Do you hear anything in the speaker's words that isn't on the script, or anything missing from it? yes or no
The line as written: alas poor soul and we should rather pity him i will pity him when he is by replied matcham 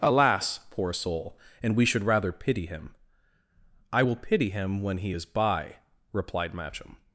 no